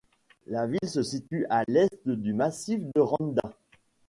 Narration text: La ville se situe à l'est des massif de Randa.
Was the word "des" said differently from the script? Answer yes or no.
yes